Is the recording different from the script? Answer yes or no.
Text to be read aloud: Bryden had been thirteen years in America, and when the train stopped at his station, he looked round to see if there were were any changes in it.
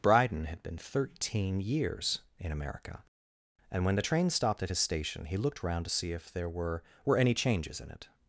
no